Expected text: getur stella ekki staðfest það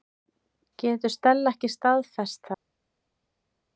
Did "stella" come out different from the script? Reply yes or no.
no